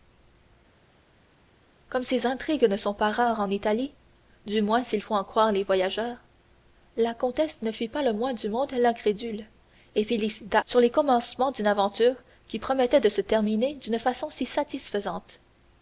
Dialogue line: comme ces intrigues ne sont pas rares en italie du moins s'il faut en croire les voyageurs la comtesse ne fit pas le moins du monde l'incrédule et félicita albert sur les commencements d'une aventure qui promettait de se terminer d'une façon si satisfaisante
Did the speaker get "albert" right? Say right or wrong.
wrong